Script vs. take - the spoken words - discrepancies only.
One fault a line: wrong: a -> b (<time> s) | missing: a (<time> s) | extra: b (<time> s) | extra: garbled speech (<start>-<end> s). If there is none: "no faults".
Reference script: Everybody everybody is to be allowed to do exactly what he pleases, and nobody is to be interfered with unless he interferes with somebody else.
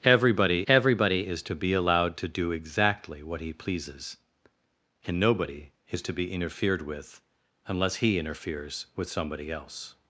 no faults